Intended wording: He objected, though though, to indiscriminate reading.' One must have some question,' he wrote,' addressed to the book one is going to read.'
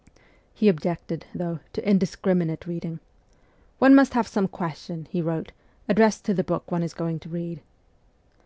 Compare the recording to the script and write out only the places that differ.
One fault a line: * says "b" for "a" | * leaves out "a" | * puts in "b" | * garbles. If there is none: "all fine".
* leaves out "though"